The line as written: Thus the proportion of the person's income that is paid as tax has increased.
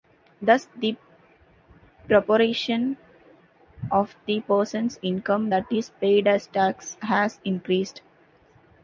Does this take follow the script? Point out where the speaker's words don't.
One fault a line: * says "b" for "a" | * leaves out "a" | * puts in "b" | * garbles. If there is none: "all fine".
all fine